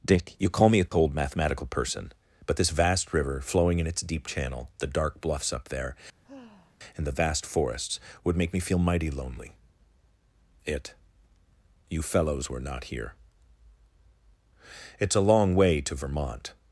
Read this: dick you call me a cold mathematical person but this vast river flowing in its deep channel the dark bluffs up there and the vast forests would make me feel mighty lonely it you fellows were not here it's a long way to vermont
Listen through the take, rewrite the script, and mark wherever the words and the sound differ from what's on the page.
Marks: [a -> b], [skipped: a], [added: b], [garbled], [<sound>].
dick you call me a cold [dropout] mathematical person but this vast river flowing in its deep channel the dark bluffs up there [sigh] and the vast forests would make me feel mighty lonely it you fellows were not here it's a long way to vermont